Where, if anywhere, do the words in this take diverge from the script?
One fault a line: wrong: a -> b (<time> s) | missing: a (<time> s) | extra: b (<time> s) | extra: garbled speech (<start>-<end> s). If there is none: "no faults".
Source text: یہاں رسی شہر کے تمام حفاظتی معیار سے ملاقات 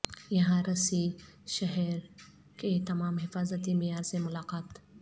no faults